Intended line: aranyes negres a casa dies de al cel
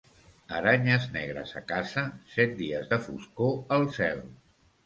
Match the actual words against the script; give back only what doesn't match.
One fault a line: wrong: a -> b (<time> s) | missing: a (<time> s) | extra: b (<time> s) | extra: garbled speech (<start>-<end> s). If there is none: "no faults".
extra: set (2.4 s)
extra: foscor (3.1 s)